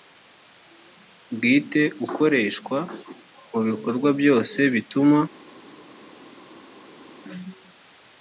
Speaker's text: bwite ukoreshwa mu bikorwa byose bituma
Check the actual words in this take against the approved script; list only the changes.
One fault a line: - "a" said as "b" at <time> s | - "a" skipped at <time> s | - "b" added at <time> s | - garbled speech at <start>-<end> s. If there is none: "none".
none